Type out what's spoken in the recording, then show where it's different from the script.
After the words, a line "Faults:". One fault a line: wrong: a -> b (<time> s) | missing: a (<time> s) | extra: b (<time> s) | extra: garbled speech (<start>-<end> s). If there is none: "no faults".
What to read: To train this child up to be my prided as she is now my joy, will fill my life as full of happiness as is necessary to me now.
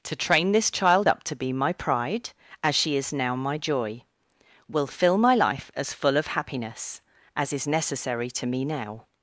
To train this child up to be my pride as she is now my joy, will fill my life as full of happiness as is necessary to me now.
Faults:
wrong: prided -> pride (1.7 s)